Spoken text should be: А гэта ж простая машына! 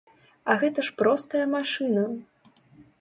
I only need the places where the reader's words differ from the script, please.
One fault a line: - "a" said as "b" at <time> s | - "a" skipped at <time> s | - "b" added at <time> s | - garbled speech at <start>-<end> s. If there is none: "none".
none